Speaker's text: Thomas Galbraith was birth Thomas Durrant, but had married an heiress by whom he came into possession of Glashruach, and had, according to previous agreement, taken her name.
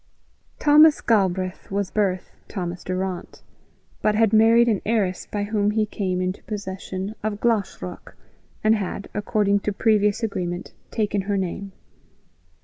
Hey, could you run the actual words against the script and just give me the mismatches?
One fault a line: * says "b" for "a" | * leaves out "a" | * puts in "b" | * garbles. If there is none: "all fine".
all fine